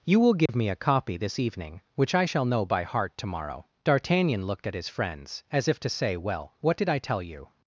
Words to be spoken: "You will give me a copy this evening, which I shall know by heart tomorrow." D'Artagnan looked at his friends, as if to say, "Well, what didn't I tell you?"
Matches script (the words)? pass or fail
fail